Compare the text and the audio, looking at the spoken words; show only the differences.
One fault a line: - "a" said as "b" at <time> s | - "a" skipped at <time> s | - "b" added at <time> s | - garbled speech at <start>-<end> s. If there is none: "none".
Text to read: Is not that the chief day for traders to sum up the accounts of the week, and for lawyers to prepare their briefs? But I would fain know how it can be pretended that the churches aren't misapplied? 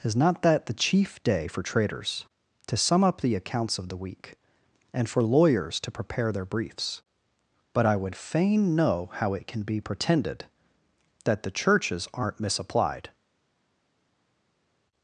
none